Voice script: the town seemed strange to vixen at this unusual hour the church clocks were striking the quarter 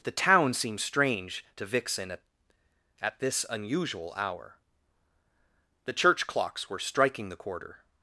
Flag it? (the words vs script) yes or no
yes